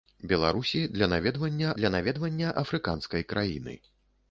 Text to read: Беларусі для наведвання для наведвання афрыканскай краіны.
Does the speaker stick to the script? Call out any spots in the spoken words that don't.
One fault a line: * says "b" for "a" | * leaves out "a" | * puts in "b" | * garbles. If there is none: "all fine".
all fine